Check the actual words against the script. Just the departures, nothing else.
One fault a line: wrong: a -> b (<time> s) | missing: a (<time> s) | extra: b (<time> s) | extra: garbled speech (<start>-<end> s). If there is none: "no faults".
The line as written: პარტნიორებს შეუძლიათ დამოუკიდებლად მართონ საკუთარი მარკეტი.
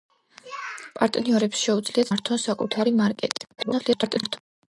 missing: დამოუკიდებლად (2.1 s)
extra: garbled speech (3.6-4.4 s)